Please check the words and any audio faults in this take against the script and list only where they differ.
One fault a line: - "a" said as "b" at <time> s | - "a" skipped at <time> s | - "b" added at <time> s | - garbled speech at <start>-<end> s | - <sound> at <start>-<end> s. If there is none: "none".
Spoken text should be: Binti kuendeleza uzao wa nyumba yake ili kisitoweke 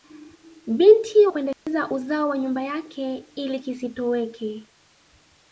- dropout at 1.5-1.7 s